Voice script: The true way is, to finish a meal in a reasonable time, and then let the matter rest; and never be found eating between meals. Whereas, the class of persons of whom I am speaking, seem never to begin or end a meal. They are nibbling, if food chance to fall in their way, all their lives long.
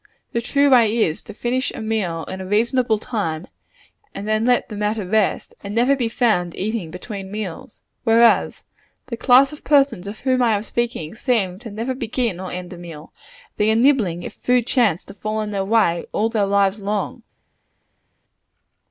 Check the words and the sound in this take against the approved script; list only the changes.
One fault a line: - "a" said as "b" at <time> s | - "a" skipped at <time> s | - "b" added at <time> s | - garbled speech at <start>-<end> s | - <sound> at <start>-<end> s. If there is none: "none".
none